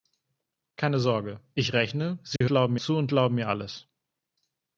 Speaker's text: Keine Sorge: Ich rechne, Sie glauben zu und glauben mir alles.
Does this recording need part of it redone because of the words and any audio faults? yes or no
yes